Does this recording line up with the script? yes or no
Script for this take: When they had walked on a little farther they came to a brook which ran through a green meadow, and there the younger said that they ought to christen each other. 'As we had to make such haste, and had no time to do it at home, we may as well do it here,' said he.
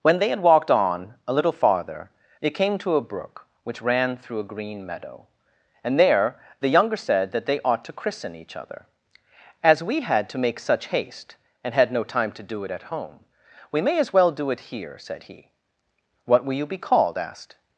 no